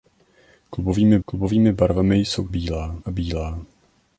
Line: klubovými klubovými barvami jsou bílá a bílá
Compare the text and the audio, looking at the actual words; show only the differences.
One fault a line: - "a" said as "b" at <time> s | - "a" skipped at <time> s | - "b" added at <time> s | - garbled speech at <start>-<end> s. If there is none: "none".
none